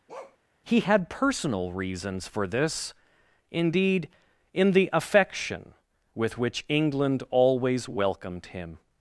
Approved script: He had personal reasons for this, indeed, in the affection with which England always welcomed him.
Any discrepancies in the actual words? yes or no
no